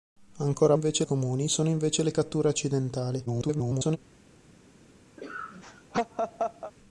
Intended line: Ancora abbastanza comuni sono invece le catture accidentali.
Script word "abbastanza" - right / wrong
wrong